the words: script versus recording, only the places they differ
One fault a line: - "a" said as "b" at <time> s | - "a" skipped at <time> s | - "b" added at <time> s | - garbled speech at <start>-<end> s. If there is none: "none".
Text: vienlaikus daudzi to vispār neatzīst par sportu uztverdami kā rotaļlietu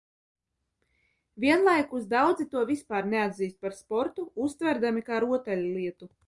none